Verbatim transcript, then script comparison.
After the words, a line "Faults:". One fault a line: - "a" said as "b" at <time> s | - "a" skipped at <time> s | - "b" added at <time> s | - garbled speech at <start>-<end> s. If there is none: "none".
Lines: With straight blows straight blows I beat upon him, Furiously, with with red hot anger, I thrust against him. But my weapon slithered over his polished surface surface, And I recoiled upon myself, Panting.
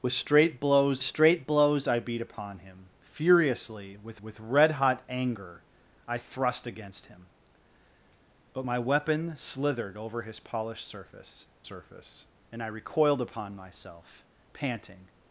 With straight blows straight blows I beat upon him, Furiously, with with red hot anger, I thrust against him. But my weapon slithered over his polished surface surface, And I recoiled upon myself, Panting.
Faults:
none